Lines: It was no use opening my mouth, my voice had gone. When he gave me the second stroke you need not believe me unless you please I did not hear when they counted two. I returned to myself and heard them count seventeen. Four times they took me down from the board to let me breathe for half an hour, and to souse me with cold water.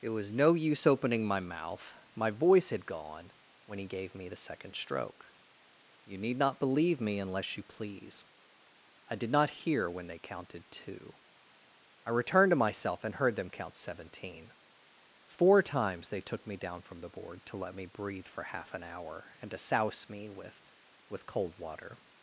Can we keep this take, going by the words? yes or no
no